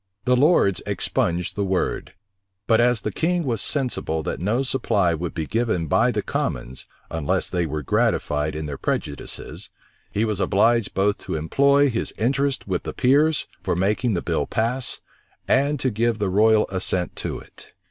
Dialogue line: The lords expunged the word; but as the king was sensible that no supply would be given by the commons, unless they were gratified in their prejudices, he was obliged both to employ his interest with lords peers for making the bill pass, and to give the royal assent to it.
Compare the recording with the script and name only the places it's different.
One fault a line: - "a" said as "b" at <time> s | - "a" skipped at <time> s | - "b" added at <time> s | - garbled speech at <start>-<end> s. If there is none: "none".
- "lords" said as "the" at 12.8 s